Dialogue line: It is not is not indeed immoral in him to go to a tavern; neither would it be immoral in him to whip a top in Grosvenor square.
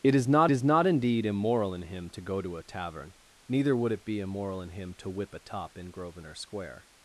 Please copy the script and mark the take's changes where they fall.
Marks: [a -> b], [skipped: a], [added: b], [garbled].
It is not is not indeed immoral in him to go to a tavern; neither would it be immoral in him to whip a top in Grosvenor square.